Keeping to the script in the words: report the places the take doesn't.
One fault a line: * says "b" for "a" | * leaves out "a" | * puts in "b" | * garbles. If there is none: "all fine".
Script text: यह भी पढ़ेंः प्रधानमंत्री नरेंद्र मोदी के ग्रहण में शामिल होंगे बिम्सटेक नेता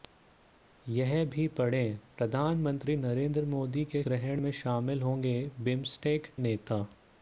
all fine